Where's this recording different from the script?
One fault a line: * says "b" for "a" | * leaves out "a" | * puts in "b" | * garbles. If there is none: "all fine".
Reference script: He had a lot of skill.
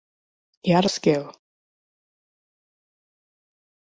* leaves out "lot"